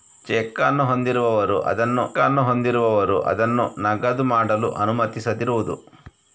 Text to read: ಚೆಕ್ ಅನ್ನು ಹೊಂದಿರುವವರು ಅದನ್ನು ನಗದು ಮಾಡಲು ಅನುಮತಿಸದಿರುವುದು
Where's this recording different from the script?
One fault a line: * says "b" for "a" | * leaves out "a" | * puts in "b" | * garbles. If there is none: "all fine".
* puts in "ಅನ್ನು ಹೊಂದಿರುವವರು ಅದನ್ನು"